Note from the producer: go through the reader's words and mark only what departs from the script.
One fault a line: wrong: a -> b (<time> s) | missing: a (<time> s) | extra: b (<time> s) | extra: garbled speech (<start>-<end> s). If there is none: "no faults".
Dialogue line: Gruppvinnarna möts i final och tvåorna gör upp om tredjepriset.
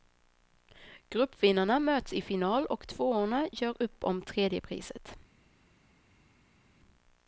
no faults